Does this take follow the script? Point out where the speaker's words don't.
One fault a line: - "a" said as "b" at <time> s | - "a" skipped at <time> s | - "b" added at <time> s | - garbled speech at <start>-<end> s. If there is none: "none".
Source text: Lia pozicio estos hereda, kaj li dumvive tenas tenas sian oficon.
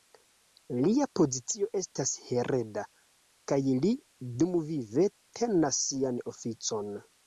- "estos" said as "estas" at 1.8 s
- "tenas" skipped at 5.9 s